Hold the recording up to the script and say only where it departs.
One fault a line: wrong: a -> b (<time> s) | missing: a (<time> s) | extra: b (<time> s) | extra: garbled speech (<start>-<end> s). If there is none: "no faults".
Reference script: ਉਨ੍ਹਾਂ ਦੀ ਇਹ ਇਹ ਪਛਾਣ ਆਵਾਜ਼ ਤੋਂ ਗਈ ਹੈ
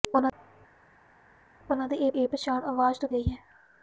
no faults